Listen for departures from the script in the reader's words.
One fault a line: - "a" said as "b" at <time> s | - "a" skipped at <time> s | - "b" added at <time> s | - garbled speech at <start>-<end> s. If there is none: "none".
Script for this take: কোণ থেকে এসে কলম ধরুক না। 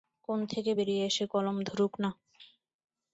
- "বেরিয়ে" added at 0.7 s